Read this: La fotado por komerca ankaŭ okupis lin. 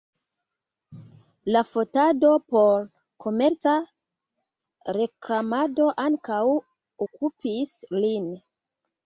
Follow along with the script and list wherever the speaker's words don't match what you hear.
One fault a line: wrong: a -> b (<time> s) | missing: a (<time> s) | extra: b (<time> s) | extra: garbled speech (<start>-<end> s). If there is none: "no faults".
extra: reklamado (5.0 s)